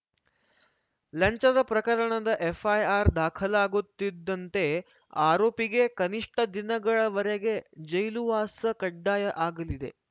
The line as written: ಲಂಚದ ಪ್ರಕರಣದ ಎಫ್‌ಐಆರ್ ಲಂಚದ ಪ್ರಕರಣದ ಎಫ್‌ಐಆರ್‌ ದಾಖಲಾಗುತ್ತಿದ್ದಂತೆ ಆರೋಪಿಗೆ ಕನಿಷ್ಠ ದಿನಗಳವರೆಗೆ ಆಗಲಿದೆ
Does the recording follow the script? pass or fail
fail